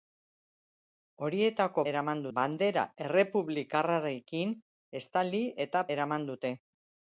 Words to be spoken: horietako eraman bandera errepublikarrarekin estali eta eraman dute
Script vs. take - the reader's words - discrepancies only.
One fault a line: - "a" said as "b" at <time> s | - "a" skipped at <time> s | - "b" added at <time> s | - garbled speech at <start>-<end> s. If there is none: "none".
none